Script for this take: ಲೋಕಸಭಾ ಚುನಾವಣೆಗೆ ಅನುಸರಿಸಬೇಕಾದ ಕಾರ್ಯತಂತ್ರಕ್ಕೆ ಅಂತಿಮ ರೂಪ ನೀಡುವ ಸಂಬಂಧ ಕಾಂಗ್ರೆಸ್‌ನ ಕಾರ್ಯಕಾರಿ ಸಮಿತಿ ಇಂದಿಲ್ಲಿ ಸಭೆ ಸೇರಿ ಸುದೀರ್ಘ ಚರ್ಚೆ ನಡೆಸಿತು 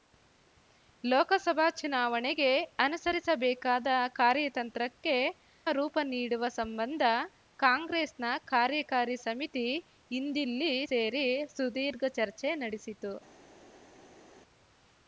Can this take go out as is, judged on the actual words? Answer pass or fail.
fail